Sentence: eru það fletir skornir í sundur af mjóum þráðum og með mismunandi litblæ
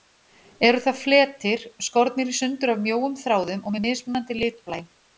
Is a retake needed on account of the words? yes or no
no